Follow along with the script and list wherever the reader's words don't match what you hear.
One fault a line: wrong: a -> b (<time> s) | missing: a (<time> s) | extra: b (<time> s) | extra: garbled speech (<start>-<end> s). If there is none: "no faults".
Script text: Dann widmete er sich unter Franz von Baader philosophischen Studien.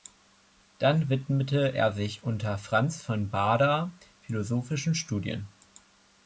no faults